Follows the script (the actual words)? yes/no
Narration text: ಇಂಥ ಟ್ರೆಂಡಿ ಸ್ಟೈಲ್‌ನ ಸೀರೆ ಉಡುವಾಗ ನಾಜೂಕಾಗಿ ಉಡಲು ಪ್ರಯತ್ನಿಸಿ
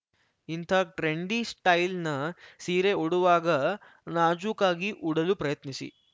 yes